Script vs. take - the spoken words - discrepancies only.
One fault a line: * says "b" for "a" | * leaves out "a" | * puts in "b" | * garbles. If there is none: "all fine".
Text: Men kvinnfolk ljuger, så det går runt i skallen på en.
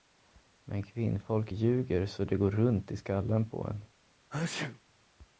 all fine